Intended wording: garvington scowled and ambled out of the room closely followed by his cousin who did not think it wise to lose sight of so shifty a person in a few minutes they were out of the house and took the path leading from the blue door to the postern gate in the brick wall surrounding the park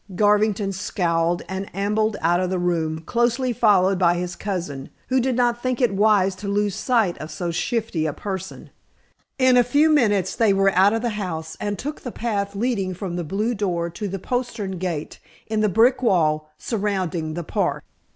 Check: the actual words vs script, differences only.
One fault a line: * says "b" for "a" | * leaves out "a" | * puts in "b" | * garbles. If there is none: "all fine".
all fine